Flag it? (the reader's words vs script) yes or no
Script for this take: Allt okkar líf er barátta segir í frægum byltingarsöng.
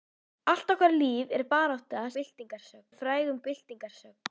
yes